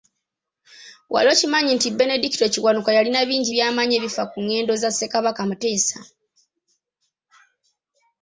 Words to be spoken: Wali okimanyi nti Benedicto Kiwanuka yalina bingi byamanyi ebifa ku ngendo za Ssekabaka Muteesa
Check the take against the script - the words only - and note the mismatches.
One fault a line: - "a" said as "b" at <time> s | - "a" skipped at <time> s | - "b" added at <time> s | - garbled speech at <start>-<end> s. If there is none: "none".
none